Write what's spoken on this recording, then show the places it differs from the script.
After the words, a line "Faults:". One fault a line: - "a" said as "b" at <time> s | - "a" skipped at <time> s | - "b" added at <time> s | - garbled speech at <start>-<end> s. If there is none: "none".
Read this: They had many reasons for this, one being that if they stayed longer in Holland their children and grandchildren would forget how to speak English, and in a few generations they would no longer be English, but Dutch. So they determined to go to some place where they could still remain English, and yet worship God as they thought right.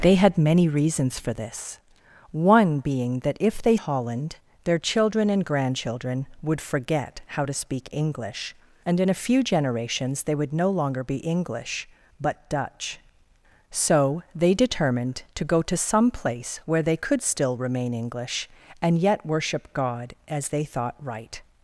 They had many reasons for this, one being that if they Holland their children and grandchildren would forget how to speak English, and in a few generations they would no longer be English, but Dutch. So they determined to go to some place where they could still remain English, and yet worship God as they thought right.
Faults:
- "stayed longer in" skipped at 3.8 s